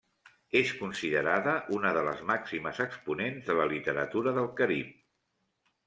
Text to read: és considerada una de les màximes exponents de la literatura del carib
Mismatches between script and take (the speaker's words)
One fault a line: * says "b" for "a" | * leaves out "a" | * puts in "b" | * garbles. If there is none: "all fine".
all fine